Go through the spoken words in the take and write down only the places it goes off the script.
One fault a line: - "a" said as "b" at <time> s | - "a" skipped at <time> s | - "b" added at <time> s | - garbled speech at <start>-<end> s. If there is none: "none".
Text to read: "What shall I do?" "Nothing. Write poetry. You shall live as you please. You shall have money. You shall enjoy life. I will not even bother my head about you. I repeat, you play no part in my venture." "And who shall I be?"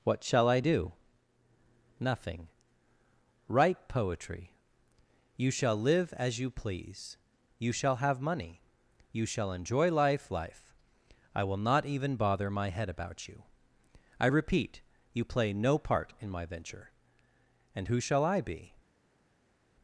- "life" added at 10.3 s